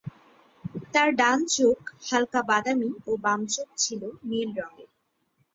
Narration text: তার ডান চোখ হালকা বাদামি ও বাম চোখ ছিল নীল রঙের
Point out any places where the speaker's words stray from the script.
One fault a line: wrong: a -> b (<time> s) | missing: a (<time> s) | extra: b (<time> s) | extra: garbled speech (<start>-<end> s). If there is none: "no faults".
no faults